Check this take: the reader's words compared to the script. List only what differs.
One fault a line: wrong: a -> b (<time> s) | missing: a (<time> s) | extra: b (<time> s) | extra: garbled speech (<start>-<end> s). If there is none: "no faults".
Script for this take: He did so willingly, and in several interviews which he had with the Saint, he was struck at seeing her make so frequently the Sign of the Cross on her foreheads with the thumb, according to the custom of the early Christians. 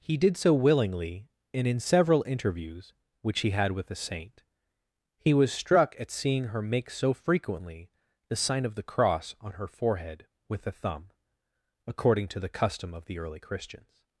wrong: foreheads -> forehead (9.7 s)